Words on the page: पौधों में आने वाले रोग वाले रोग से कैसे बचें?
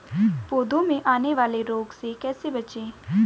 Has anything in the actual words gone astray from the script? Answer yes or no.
yes